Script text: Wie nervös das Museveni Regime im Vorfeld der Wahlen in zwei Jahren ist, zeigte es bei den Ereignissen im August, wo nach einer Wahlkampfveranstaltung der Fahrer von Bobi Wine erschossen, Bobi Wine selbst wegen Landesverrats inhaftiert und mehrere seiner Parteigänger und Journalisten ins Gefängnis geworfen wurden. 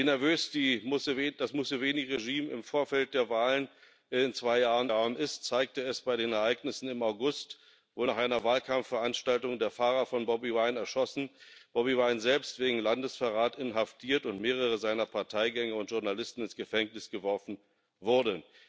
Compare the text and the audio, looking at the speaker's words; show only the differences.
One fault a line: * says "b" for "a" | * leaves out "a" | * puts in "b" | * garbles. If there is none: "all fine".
* puts in "Jahren"